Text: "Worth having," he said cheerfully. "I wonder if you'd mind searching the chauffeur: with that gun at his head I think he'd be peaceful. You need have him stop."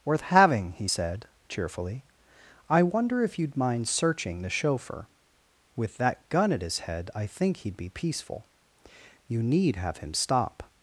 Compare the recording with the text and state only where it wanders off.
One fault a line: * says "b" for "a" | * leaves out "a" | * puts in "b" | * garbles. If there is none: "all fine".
all fine